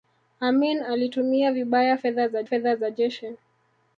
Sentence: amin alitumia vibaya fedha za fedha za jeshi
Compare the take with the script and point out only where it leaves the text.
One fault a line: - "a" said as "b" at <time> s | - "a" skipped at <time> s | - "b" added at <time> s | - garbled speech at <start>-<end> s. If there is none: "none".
none